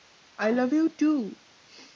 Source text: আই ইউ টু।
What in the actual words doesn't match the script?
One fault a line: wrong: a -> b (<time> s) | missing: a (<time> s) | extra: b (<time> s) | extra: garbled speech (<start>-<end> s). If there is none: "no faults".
extra: লাভ (0.6 s)